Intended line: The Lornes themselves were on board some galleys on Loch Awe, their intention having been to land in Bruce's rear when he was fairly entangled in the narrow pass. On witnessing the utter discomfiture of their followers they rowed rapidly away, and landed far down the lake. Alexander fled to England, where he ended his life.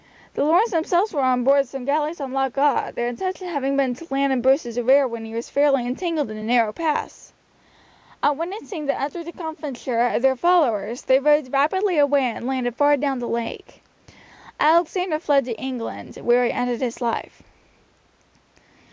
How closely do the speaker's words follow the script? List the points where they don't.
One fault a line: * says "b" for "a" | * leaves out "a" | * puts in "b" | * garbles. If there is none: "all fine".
all fine